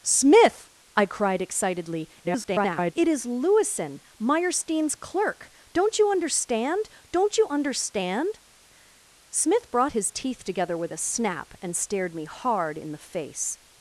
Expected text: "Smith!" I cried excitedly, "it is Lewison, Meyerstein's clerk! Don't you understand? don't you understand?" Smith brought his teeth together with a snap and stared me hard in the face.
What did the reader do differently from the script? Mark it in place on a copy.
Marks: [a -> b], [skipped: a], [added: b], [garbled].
"Smith!" I cried excitedly, [garbled] "it is Lewison, Meyerstein's clerk! Don't you understand? don't you understand?" Smith brought his teeth together with a snap and stared me hard in the face.